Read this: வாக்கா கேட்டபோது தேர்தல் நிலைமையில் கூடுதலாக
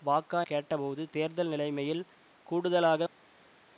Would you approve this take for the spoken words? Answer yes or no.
yes